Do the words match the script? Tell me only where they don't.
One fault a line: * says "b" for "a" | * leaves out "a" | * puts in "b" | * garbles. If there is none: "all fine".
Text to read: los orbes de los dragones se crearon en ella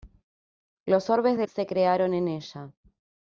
* leaves out "los dragones"